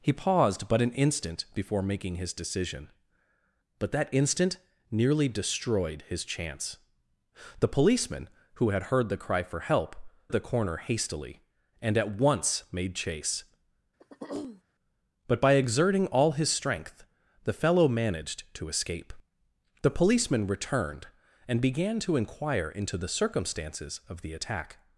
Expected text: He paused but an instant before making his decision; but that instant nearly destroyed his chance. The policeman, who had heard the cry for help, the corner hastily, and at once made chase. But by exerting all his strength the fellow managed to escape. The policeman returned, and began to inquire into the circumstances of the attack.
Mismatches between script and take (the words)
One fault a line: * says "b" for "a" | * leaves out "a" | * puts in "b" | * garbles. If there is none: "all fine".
all fine